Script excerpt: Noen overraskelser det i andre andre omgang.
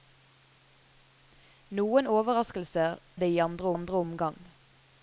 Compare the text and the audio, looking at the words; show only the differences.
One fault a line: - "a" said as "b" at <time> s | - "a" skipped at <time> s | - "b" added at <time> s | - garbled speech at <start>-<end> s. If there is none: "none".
none